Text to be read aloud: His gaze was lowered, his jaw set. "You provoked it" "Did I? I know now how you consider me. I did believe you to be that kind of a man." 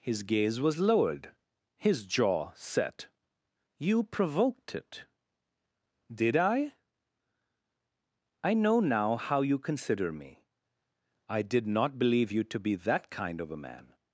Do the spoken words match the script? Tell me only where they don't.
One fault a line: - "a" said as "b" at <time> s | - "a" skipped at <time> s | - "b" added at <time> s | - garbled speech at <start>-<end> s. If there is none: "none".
- "not" added at 11.7 s